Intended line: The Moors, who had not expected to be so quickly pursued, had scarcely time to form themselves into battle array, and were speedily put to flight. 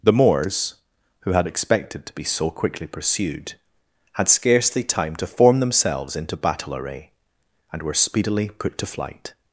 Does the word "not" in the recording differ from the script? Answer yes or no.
yes